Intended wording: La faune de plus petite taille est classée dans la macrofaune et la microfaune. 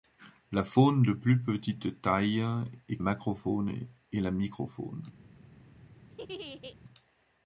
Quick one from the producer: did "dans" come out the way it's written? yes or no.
no